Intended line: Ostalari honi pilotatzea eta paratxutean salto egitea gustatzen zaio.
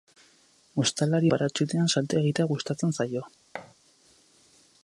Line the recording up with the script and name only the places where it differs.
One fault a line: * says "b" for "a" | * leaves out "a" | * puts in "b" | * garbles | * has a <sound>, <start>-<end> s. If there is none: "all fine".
* leaves out "honi pilotatzea eta"
* has a thud, 3.5-3.7 s